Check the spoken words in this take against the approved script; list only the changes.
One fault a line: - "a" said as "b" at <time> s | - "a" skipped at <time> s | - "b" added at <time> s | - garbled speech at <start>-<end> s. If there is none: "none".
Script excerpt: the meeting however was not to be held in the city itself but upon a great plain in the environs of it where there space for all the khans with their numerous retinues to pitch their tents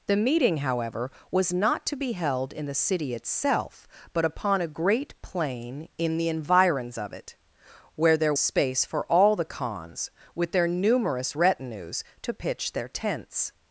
none